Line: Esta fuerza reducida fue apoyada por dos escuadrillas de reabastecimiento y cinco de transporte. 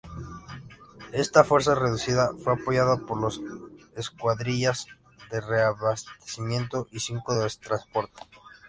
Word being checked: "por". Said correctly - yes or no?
yes